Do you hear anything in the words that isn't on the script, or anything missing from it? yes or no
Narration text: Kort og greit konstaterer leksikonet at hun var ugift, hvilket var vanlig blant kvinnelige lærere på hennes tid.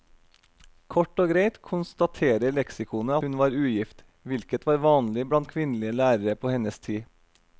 yes